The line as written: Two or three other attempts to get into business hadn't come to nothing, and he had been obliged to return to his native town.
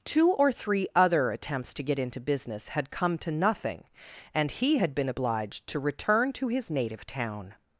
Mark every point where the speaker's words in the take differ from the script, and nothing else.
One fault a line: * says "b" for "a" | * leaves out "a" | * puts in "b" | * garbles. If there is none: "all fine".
* says "had" for "hadn't"